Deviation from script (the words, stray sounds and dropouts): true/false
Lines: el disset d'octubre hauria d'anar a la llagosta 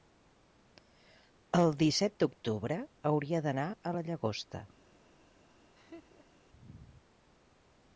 true